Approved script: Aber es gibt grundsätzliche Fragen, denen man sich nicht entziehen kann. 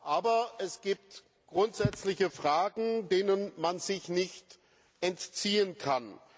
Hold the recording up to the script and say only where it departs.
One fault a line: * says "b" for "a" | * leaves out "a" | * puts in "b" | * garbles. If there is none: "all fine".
all fine